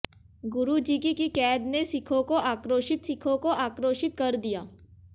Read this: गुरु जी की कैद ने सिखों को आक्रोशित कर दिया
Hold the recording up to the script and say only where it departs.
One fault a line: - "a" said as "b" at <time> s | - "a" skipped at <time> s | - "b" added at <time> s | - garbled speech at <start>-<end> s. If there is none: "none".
- "की" added at 1.1 s
- "सिखों को आक्रोशित" added at 3.0 s